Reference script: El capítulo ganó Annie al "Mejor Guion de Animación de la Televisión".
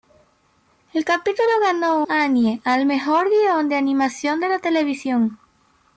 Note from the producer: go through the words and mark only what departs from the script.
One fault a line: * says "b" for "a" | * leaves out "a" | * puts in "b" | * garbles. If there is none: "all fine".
all fine